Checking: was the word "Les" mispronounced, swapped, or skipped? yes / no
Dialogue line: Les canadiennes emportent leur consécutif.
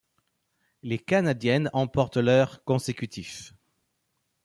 no